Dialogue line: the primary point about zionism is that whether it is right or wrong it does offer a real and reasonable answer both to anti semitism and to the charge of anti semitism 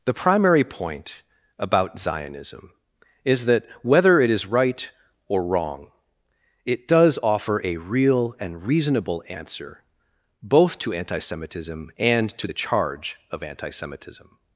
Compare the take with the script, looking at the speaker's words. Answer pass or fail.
pass